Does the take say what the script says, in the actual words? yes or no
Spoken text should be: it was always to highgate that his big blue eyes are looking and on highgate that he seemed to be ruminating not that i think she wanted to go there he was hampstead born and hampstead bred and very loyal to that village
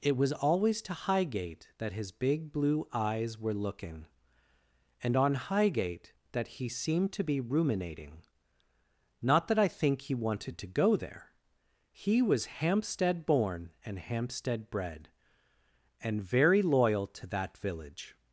no